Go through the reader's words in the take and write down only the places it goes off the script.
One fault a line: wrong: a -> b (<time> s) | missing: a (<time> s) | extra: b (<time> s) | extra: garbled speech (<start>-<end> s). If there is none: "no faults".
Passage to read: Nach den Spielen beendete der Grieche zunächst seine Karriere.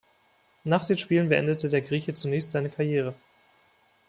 no faults